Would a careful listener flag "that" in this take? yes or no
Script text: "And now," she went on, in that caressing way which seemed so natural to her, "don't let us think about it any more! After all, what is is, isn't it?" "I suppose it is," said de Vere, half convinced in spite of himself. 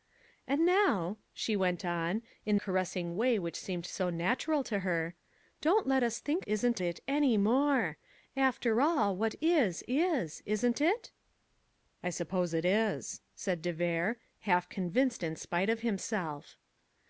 yes